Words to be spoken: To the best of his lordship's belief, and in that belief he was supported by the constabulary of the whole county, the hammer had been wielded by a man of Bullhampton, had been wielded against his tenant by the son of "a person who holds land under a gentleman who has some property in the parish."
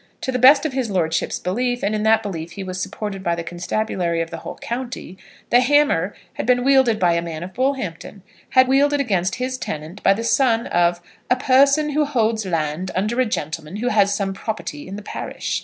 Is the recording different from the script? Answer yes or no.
yes